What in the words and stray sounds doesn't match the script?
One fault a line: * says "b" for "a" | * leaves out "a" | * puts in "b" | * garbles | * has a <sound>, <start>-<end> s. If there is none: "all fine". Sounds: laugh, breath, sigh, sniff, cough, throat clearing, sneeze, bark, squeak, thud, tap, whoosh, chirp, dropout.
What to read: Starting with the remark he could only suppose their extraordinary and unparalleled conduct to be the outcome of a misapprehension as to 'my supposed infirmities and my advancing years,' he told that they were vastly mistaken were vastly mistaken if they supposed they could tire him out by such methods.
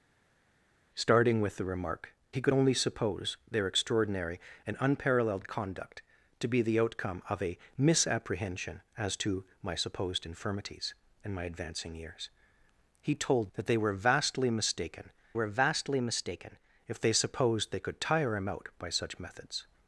all fine